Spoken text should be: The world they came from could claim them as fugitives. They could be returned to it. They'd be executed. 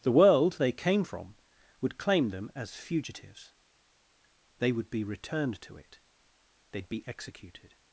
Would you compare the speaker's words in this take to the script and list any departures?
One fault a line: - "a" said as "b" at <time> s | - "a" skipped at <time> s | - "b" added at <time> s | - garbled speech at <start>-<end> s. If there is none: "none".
- "could" said as "would" at 1.8 s
- "could" said as "would" at 4.7 s